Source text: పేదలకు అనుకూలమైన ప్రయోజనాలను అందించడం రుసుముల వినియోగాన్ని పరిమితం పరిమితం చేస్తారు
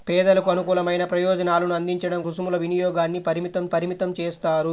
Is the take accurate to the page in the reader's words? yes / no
yes